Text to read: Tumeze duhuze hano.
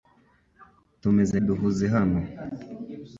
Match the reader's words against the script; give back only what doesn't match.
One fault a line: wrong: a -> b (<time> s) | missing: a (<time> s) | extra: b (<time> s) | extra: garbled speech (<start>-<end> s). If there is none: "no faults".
no faults